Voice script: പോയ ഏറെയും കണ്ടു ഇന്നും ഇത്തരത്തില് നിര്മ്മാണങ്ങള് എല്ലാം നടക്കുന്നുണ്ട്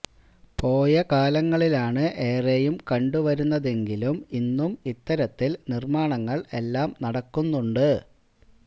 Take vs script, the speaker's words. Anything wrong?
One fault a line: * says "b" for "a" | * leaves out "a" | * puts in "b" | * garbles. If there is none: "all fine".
* puts in "കാലങ്ങളിലാണ്"
* puts in "വരുന്നതെങ്കിലും"